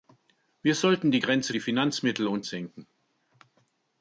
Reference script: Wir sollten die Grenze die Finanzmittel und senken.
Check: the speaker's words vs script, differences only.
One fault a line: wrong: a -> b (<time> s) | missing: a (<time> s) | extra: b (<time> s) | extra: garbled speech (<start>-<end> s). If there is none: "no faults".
no faults